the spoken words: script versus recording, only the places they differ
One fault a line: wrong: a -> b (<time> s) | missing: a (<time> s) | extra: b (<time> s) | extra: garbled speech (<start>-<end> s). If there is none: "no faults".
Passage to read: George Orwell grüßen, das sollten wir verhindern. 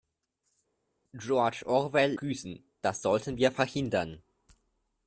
no faults